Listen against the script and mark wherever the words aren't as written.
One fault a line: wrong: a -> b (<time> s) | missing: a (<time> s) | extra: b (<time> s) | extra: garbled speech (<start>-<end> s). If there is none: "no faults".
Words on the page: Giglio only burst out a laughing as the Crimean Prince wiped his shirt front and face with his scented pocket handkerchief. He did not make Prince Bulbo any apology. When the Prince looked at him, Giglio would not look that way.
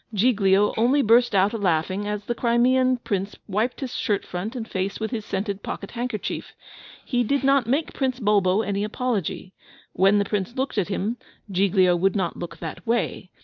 no faults